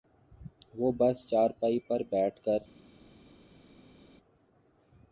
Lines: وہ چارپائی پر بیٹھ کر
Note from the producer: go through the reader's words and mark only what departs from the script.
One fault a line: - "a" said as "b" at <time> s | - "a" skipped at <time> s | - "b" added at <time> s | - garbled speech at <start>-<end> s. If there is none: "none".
- "بس" added at 1.0 s